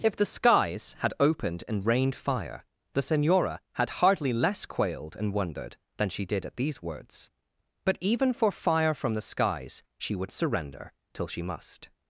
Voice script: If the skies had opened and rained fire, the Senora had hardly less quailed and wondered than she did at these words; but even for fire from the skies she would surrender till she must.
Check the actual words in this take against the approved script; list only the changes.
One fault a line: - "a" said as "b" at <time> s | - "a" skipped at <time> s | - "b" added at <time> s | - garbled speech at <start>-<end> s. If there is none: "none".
none